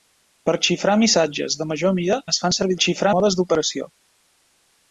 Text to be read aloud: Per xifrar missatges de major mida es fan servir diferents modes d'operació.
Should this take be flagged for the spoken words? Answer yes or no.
yes